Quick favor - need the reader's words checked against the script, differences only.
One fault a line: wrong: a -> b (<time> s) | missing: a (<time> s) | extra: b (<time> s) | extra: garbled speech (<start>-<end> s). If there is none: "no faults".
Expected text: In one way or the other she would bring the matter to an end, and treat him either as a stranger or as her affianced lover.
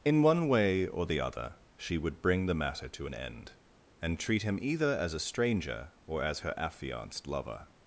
no faults